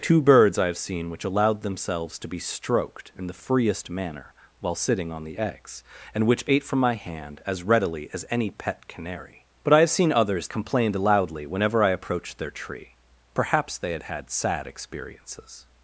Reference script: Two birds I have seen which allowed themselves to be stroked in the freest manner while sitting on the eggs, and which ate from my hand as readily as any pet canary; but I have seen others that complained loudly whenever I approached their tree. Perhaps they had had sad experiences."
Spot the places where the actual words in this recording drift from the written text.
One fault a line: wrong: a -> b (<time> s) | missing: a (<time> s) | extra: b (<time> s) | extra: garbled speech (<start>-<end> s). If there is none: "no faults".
missing: that (10.5 s)